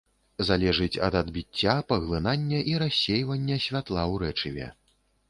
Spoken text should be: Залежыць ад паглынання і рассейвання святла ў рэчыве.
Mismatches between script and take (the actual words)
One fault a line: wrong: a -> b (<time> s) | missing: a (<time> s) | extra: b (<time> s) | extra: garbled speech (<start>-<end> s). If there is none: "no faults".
extra: адбіцця (1.2 s)